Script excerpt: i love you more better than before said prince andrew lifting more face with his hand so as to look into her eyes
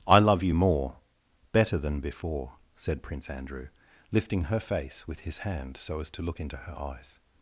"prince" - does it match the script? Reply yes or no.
yes